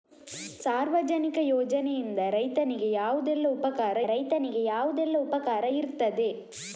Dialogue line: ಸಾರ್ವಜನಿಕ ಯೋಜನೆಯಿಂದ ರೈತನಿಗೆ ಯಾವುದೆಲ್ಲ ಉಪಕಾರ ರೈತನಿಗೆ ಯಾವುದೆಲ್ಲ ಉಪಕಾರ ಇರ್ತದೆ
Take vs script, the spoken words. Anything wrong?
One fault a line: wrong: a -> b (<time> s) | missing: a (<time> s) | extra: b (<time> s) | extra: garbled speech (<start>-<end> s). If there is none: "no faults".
no faults